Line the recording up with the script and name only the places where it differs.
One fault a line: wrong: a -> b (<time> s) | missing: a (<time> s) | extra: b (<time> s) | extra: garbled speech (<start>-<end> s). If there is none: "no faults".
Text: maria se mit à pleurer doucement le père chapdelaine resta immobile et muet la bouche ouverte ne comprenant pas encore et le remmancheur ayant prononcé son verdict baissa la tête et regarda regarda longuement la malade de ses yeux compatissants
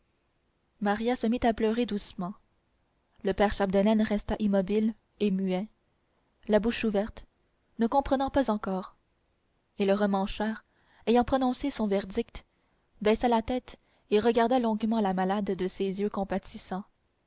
missing: regarda (14.6 s)